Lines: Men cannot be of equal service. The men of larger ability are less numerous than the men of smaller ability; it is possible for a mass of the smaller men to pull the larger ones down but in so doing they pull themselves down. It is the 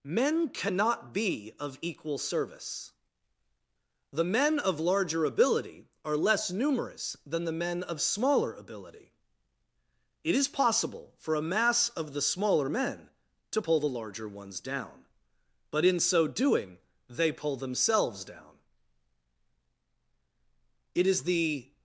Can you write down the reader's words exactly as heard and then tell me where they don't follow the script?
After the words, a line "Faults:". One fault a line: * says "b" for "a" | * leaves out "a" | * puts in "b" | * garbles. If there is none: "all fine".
Men cannot be of equal service. The men of larger ability are less numerous than the men of smaller ability; it is possible for a mass of the smaller men to pull the larger ones down but in so doing they pull themselves down. It is the
Faults:
all fine